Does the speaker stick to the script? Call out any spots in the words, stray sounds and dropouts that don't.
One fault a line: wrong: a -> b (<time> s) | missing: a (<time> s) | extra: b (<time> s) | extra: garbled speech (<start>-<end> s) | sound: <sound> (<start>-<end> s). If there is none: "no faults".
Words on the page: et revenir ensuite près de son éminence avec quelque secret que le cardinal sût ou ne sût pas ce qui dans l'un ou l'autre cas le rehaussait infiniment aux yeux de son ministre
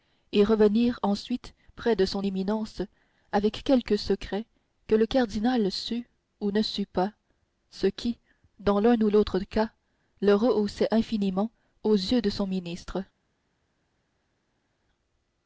no faults